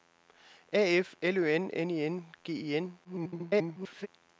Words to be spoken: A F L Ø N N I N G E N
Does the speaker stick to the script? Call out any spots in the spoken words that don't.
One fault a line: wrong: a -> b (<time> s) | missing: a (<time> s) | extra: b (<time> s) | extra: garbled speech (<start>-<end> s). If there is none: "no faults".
extra: garbled speech (3.0-4.1 s)